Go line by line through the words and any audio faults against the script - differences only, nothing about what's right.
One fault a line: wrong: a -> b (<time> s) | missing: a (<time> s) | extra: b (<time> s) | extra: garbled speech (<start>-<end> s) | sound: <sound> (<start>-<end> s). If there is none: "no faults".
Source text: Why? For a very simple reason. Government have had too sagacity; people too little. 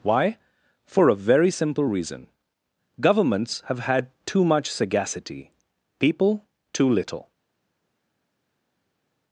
wrong: Government -> Governments (3.0 s)
extra: much (4.4 s)